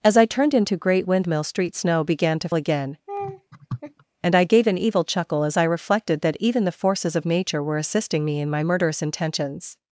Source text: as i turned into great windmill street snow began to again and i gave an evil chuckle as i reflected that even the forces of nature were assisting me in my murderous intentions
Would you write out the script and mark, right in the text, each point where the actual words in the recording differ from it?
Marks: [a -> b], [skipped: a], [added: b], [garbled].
as i turned into great windmill street snow began to again and i gave an evil chuckle as i reflected that even the forces of nature were assisting me in my murderous intentions